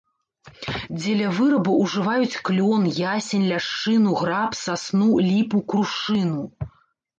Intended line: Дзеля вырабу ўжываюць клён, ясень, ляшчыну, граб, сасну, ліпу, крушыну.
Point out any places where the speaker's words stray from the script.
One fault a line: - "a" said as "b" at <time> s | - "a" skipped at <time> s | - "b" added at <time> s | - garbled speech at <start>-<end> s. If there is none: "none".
none